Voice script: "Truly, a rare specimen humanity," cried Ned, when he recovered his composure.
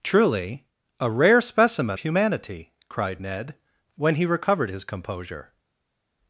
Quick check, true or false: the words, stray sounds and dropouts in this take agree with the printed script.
true